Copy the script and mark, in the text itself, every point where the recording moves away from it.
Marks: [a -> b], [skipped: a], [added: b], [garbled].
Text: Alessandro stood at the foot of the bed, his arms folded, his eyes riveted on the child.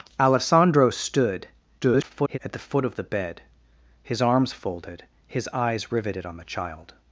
Alessandro stood [garbled] at the foot of the bed, his arms folded, his eyes riveted on the child.